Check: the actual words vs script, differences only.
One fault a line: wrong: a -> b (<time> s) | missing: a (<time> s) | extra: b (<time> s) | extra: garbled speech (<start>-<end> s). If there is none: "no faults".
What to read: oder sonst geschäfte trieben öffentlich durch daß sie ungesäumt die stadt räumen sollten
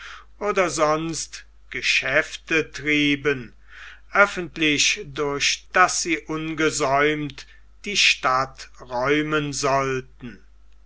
no faults